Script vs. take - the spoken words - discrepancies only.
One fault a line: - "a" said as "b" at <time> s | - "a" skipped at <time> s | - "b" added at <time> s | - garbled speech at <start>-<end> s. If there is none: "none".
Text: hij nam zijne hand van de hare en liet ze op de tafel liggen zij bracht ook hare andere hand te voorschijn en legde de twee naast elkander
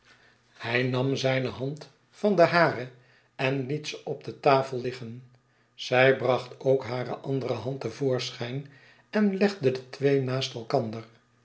none